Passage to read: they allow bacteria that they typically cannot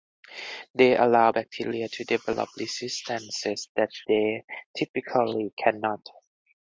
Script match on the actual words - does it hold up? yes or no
no